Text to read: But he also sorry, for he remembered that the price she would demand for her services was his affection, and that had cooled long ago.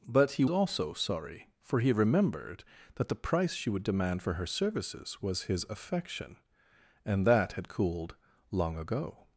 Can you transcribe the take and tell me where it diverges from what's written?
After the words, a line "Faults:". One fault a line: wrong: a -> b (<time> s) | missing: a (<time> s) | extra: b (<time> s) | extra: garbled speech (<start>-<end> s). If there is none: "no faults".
But he also sorry, for he remembered that the price she would demand for her services was his affection, and that had cooled long ago.
Faults:
no faults